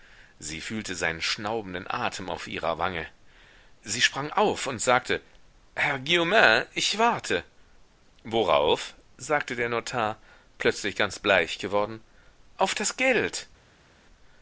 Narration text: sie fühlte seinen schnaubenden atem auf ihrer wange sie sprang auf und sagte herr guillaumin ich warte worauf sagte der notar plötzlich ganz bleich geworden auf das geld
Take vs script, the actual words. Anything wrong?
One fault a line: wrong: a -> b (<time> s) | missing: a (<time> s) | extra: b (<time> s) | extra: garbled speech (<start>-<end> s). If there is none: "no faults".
no faults